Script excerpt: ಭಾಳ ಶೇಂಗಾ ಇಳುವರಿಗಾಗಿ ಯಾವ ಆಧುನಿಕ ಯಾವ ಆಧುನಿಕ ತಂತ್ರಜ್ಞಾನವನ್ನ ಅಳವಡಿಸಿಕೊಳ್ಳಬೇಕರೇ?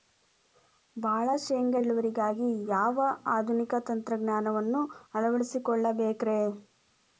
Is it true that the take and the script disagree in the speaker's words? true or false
true